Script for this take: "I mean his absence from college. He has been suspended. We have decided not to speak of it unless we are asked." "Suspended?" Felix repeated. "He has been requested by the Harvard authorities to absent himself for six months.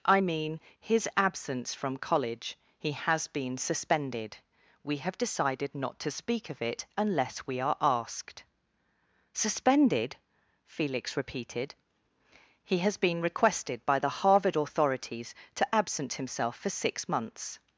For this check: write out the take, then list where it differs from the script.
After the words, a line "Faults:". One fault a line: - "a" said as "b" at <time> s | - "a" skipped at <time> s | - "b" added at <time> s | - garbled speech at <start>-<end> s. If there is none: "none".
"I mean his absence from college. He has been suspended. We have decided not to speak of it unless we are asked." "Suspended?" Felix repeated. "He has been requested by the Harvard authorities to absent himself for six months.
Faults:
none